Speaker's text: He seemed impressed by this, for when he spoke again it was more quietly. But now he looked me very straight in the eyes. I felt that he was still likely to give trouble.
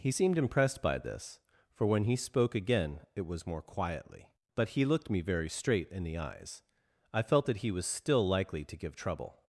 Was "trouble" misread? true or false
false